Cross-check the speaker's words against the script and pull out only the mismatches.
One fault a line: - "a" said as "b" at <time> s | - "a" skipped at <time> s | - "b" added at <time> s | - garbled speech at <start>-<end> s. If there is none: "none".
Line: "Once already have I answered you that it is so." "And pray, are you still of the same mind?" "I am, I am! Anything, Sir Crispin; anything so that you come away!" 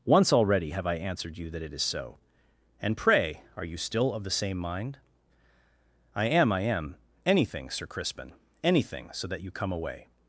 none